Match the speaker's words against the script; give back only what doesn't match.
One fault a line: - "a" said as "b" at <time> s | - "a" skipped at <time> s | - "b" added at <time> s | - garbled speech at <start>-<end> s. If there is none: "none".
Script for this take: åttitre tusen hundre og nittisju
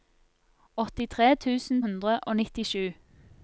none